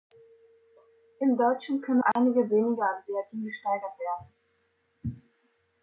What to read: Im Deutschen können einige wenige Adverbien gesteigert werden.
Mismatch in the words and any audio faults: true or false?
true